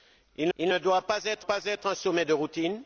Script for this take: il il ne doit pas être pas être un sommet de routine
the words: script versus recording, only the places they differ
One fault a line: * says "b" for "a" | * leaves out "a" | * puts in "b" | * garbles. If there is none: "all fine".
all fine